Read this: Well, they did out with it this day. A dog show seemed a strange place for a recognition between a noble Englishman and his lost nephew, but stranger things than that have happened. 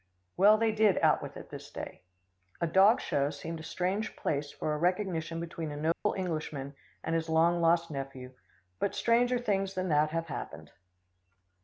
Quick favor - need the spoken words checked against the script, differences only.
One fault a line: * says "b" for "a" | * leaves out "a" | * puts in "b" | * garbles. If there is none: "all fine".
* puts in "long"